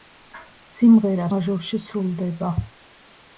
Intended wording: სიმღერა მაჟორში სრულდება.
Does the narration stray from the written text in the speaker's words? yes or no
no